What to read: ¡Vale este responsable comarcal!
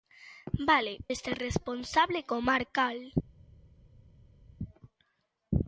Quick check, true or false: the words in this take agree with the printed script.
true